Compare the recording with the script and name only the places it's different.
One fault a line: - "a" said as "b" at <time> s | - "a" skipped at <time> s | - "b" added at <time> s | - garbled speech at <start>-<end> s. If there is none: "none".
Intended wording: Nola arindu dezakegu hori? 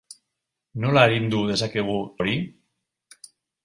none